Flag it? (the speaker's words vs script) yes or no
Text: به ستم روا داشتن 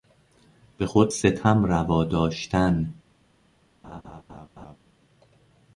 yes